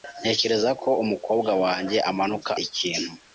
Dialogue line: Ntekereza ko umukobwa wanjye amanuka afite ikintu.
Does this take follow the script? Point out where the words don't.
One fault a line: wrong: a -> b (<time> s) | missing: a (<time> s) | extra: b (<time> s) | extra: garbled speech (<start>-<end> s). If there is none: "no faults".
missing: afite (2.5 s)